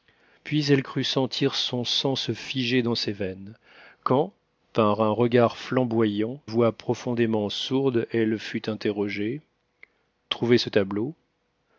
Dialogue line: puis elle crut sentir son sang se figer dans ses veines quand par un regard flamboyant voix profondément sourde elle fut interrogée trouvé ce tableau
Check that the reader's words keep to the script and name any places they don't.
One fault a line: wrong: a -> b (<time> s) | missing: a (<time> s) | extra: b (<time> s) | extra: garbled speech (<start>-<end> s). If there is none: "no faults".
no faults